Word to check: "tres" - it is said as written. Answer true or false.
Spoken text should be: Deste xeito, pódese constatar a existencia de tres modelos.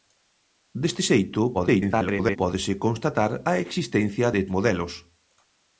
false